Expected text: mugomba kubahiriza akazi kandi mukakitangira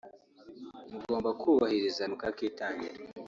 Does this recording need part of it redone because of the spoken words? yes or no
yes